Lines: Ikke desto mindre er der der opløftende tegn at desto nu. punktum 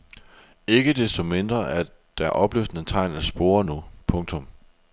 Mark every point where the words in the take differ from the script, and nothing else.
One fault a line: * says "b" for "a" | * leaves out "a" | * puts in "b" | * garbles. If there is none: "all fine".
* leaves out "der"
* says "spore" for "desto"